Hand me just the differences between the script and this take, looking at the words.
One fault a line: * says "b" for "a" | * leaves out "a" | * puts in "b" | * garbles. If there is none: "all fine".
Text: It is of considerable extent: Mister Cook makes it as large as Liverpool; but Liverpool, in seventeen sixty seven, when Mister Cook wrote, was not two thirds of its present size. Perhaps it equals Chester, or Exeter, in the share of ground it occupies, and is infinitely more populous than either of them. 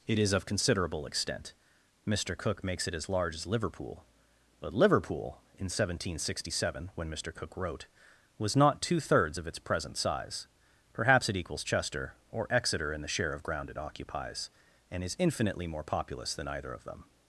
all fine